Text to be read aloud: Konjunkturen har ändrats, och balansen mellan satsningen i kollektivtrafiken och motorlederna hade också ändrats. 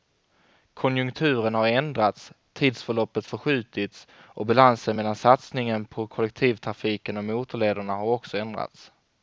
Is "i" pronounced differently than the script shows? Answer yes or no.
yes